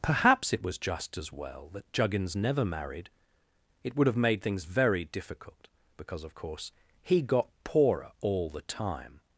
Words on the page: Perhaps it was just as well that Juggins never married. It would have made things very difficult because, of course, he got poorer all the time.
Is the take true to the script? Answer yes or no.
yes